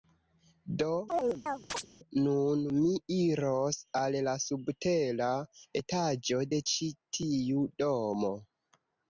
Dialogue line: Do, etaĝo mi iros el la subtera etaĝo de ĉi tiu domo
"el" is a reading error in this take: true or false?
true